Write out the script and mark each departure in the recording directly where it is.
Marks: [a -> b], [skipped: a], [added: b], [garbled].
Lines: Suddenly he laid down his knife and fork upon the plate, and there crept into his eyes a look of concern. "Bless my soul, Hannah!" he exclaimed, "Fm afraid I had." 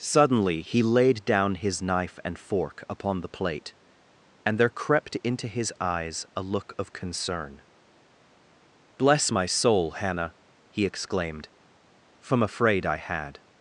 Suddenly he laid down his knife and fork upon the plate, and there crept into his eyes a look of concern. "Bless my soul, Hannah!" he exclaimed, ["Fm -> From] afraid I had."